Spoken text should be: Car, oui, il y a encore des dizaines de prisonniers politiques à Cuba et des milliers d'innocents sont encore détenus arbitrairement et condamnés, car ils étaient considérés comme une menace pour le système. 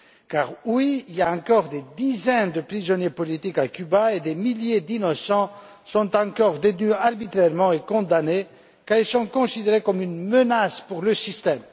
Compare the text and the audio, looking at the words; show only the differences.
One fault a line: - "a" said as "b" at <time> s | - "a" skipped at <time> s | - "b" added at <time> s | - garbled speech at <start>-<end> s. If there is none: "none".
- "étaient" said as "sont" at 9.1 s